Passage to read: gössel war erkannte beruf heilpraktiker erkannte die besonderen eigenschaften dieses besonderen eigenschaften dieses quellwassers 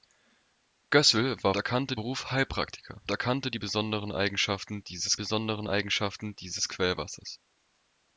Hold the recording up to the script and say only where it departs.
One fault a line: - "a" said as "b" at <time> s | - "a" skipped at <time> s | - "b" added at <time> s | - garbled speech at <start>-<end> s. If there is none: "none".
none